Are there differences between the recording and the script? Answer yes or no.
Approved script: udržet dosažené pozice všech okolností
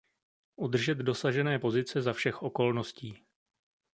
yes